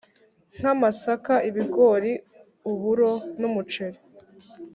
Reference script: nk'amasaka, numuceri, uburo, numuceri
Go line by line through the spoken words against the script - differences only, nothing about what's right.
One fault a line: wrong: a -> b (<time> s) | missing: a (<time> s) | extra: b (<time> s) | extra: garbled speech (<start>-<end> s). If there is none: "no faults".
wrong: numuceri -> ibigori (1.5 s)